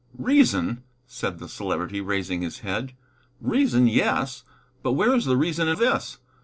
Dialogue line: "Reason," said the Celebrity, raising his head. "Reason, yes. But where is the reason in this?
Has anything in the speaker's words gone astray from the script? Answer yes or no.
no